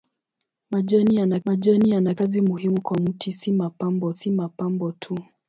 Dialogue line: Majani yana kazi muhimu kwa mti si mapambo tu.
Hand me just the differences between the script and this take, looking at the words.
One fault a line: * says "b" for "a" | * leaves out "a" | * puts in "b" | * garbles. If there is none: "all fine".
* puts in "majani yana"
* puts in "si mapambo"